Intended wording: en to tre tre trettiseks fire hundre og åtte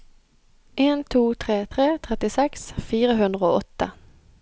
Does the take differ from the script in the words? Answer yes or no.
no